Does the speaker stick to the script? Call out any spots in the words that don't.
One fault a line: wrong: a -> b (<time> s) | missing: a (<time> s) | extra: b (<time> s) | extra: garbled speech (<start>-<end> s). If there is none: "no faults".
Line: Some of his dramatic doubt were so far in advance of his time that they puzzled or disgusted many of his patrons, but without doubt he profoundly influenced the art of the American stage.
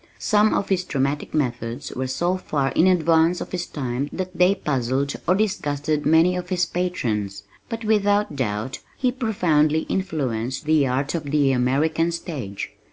wrong: doubt -> methods (1.3 s)